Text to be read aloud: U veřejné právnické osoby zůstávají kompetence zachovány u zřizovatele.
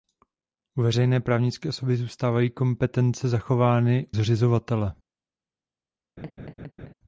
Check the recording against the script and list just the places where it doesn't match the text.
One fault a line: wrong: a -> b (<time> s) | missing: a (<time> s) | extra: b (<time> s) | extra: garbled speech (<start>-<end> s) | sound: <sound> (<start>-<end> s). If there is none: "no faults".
missing: u (4.1 s)
sound: laugh (6.2-6.9 s)